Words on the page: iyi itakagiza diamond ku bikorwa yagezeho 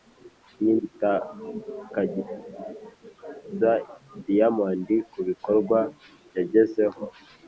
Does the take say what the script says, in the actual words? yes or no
yes